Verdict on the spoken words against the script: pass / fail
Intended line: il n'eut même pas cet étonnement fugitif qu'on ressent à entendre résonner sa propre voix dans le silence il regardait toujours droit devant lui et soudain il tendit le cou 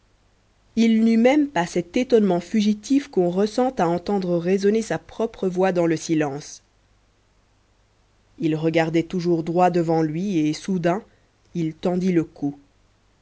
pass